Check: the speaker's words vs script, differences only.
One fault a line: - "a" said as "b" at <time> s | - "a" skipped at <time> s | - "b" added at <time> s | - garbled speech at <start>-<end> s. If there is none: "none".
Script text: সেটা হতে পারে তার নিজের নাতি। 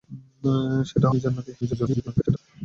- "হতে পারে তার" skipped at 1.1 s
- garbled speech at 1.6-2.4 s